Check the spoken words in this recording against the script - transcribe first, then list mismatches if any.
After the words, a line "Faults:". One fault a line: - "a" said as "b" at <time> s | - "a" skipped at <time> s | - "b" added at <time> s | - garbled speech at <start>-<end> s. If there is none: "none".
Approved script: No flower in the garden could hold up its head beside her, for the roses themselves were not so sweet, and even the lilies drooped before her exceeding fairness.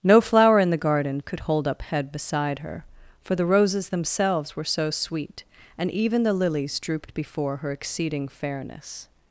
No flower in the garden could hold up head beside her, for the roses themselves were so sweet, and even the lilies drooped before her exceeding fairness.
Faults:
- "its" skipped at 1.8 s
- "not" skipped at 4.6 s